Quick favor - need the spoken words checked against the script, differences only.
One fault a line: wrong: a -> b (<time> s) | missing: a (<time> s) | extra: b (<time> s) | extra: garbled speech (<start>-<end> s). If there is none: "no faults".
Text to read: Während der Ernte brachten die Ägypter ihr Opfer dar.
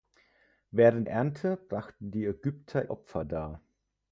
missing: der (1.1 s)
missing: ihr (2.9 s)